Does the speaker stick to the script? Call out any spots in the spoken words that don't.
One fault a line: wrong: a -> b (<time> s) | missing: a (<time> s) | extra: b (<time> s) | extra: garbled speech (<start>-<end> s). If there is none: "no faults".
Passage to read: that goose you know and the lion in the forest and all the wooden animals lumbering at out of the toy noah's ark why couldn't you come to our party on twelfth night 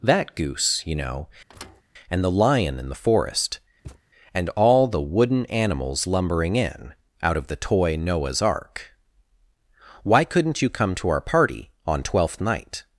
wrong: at -> in (6.5 s)